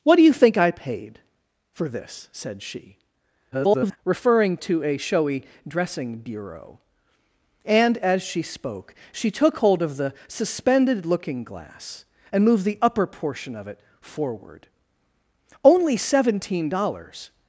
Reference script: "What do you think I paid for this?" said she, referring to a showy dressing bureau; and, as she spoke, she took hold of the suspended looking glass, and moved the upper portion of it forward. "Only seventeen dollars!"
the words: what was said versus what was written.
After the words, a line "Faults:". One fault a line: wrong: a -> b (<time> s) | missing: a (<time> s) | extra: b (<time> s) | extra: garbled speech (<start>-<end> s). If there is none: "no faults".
"What do you think I paid for this?" said she, [garbled] referring to a showy dressing bureau; and, as she spoke, she took hold of the suspended looking glass, and moved the upper portion of it forward. "Only seventeen dollars!"
Faults:
extra: garbled speech (3.5-4.0 s)